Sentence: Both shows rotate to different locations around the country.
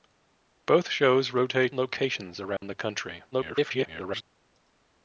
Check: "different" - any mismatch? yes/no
yes